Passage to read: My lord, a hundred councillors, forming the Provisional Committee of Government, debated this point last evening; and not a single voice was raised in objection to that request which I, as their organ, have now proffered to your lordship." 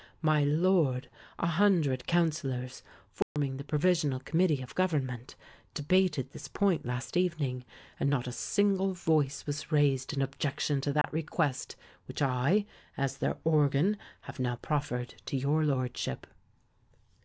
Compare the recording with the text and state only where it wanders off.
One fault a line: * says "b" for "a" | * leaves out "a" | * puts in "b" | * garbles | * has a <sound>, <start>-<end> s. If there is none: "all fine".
* has a dropout, 3.2-3.4 s
* has a dropout, 11.0-11.0 s